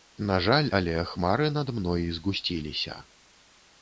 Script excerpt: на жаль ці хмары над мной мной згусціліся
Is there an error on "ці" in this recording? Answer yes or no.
yes